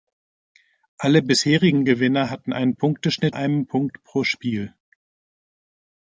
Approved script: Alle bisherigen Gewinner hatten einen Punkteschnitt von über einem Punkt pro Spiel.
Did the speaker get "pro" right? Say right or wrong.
right